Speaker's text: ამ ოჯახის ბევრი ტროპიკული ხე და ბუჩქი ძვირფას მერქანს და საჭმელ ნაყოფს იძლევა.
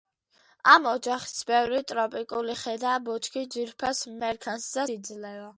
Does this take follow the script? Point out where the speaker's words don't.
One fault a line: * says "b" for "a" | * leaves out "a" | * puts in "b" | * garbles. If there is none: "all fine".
* leaves out "საჭმელ ნაყოფს"